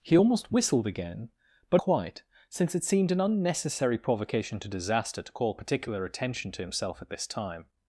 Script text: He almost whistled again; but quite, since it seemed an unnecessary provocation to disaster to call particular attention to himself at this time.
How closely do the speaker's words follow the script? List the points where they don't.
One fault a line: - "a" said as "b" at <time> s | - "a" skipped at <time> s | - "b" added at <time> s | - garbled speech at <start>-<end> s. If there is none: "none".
none